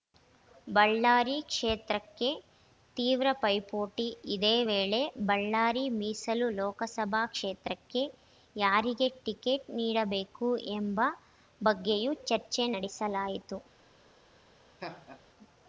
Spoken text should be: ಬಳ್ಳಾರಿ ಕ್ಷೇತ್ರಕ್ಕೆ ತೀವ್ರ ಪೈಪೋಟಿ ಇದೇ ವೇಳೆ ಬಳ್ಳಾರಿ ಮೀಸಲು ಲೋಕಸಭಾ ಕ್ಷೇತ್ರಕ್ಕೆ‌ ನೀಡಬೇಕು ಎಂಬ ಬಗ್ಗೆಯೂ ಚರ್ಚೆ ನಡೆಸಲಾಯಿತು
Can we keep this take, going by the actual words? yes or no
no